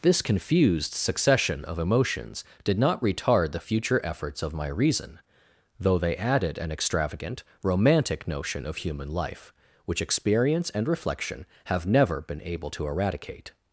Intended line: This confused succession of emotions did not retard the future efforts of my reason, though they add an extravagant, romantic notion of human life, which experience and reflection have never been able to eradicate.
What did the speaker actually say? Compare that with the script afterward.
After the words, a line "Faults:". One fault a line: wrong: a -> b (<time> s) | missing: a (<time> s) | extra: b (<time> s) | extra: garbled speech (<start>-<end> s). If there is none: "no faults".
This confused succession of emotions did not retard the future efforts of my reason, though they added an extravagant, romantic notion of human life, which experience and reflection have never been able to eradicate.
Faults:
wrong: add -> added (6.2 s)